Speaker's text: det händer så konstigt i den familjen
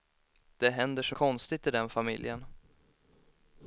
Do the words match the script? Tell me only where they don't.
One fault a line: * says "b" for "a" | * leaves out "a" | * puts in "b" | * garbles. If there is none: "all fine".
all fine